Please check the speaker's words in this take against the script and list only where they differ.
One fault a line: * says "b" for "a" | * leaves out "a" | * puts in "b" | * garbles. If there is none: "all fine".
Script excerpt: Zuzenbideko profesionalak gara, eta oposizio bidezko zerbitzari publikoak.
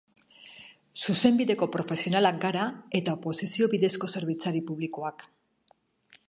all fine